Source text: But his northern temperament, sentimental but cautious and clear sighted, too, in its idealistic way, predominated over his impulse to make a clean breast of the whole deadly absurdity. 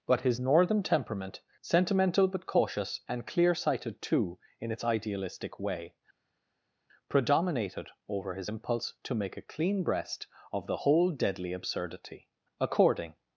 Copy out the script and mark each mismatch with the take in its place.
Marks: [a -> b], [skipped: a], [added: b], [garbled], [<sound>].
But his northern temperament, sentimental but cautious and clear sighted, too, in its idealistic way, predominated over his impulse to make a clean breast of the whole deadly absurdity. [added: According]